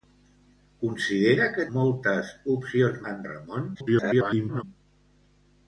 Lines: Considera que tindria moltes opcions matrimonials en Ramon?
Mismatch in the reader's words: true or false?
true